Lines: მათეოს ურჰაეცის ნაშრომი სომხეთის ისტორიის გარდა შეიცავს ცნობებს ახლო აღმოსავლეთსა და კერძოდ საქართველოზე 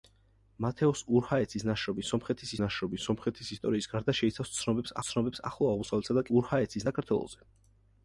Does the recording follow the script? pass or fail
fail